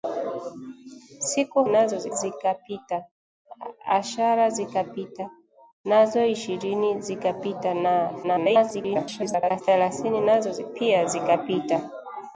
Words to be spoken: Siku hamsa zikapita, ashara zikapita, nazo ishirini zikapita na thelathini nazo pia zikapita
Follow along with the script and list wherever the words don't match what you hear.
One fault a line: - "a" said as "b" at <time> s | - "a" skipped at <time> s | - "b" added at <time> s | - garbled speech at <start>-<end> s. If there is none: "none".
- "hamsa" said as "nazo" at 1.7 s
- garbled speech at 8.2-9.6 s